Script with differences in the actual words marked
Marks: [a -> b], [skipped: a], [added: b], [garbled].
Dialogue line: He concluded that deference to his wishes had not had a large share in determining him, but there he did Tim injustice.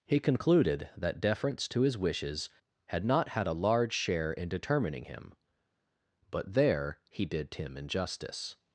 He concluded that deference to his wishes had not had a large share in determining him, but there he did Tim injustice.